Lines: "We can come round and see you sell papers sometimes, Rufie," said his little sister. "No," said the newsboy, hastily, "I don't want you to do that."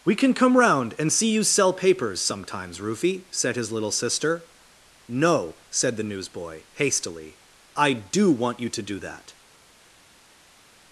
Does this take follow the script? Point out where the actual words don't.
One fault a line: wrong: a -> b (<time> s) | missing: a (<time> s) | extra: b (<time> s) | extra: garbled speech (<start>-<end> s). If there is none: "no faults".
wrong: don't -> do (7.9 s)